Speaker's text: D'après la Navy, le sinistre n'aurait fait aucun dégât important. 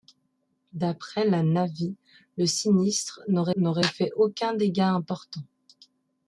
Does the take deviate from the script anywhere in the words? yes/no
yes